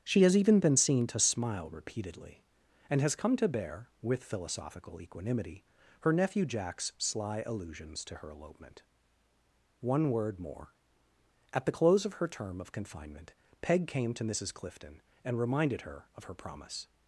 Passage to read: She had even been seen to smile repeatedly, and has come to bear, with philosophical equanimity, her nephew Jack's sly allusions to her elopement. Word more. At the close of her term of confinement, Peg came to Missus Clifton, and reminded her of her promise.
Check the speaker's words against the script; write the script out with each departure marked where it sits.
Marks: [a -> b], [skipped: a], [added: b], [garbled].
She [had -> has] even been seen to smile repeatedly, and has come to bear, with philosophical equanimity, her nephew Jack's sly allusions to her elopement. [added: One] Word more. At the close of her term of confinement, Peg came to Missus Clifton, and reminded her of her promise.